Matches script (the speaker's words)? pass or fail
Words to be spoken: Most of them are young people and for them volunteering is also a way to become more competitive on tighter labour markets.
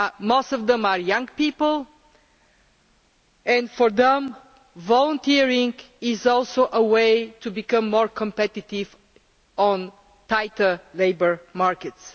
pass